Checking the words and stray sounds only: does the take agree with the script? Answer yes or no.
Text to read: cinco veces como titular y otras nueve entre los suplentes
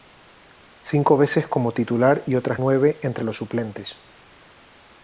yes